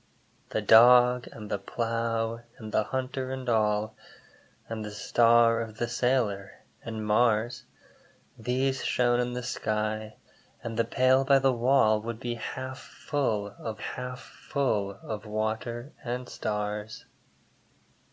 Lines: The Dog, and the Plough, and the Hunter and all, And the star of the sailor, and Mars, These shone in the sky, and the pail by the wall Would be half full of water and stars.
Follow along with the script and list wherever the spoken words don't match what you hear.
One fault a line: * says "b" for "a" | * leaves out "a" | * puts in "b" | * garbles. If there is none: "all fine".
* puts in "half full of"